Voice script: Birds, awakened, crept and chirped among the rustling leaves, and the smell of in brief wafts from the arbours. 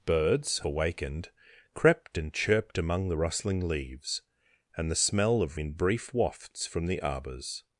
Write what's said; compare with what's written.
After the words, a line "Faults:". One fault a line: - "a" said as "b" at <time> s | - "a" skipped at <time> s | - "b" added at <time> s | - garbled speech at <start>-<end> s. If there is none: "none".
Birds, awakened, crept and chirped among the rustling leaves, and the smell of in brief wafts from the arbours.
Faults:
none